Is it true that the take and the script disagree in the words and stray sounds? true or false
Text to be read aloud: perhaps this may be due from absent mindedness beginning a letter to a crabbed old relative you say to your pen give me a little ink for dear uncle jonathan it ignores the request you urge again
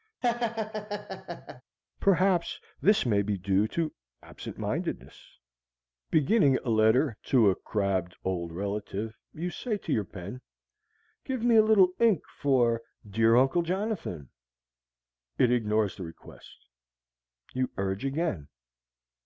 true